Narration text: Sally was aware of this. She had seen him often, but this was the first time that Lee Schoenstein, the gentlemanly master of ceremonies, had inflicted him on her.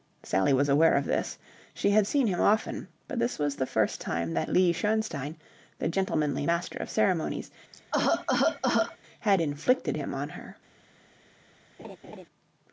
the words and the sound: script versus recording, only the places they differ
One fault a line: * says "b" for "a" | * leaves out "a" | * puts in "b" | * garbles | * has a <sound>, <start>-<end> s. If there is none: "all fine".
* has a cough, 7.7-9.0 s
* has a laugh, 11.8-12.3 s